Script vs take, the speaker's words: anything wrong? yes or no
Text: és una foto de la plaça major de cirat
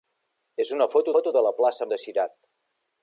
yes